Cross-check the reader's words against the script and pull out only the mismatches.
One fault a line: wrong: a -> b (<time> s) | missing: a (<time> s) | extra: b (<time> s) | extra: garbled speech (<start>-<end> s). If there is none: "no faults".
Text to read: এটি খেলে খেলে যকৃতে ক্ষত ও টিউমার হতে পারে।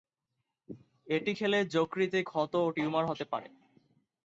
missing: খেলে (1.6 s)